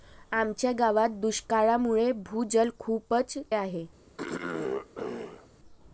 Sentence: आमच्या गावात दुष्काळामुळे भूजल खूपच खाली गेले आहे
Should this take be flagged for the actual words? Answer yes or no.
yes